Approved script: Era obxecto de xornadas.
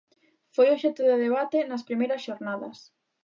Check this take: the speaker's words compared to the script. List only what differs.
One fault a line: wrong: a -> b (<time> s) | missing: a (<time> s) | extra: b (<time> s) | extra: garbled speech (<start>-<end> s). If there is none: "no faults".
wrong: Era -> Foi (0.6 s)
extra: debate nas primeiras (1.2 s)